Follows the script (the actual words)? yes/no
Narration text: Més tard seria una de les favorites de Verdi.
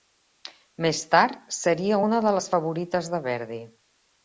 yes